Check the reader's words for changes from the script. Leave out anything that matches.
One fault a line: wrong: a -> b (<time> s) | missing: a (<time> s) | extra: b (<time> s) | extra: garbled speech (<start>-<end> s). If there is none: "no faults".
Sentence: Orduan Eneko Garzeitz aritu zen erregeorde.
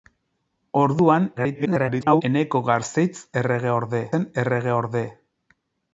extra: garbled speech (1.4-2.2 s)
wrong: aritu -> erregeorde (3.4 s)